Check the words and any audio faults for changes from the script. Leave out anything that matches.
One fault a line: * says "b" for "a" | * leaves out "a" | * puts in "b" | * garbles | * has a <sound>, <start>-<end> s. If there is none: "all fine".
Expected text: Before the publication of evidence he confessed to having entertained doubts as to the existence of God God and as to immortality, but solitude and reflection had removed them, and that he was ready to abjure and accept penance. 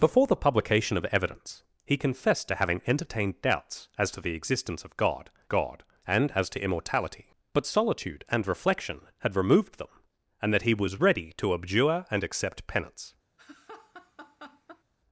* has a laugh, 13.4-14.8 s